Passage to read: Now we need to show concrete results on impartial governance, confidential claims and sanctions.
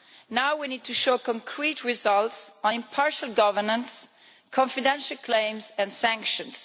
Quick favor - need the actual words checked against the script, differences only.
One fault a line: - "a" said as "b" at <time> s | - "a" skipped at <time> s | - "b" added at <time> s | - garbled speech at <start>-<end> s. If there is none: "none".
none